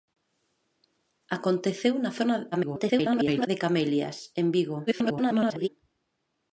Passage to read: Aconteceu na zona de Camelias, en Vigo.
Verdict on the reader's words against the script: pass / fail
fail